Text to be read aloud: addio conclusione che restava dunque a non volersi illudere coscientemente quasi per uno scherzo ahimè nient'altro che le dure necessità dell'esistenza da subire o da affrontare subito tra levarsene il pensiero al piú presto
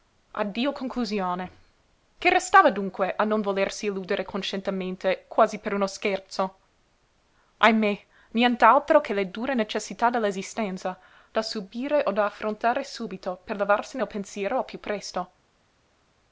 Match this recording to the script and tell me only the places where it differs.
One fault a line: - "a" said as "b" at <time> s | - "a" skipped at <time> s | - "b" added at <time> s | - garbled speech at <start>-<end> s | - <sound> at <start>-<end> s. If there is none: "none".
- "tra" said as "per" at 13.4 s